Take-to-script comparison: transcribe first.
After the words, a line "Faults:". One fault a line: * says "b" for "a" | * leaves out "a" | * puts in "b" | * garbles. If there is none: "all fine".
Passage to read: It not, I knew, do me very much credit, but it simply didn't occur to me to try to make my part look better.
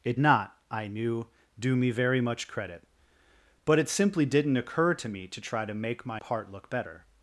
It not, I knew, do me very much credit, but it simply didn't occur to me to try to make my part look better.
Faults:
all fine